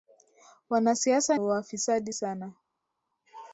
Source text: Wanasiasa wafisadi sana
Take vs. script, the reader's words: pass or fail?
pass